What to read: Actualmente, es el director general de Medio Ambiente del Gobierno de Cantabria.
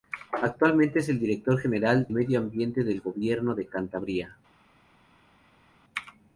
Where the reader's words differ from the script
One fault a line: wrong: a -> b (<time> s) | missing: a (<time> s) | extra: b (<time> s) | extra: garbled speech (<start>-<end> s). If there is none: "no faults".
missing: de (2.1 s)